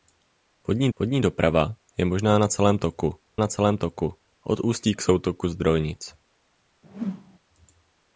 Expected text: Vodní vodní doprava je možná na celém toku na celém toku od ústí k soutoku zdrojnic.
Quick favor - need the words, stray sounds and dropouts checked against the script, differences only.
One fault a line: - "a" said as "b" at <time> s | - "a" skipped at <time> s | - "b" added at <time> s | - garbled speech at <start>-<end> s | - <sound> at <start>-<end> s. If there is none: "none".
- whoosh at 6.8-7.4 s